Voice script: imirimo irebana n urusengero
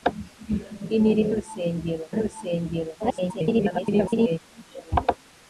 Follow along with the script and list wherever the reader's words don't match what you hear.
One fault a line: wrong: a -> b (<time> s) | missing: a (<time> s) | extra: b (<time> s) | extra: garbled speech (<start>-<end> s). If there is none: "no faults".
wrong: irebana -> urusengero (1.3 s)
extra: garbled speech (3.0-4.4 s)